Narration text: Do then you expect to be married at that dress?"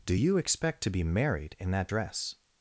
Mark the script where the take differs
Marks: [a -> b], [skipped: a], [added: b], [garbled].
Do [skipped: then] you expect to be married [at -> in] that dress?"